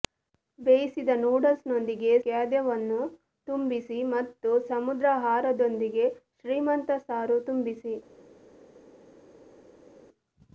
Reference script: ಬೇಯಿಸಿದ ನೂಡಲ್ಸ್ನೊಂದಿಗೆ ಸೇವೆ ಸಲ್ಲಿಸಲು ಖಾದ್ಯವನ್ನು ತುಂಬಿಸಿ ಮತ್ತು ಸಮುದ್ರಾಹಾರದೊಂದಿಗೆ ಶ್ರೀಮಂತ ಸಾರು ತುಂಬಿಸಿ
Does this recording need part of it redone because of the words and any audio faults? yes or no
yes